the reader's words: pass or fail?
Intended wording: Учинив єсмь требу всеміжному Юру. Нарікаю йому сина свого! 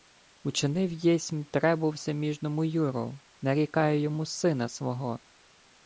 pass